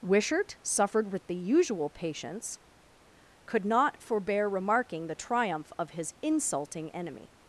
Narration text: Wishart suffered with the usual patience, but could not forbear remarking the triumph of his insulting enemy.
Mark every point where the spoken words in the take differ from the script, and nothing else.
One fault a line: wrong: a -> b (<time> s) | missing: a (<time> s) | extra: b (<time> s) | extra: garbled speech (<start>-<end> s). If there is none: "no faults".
missing: but (2.6 s)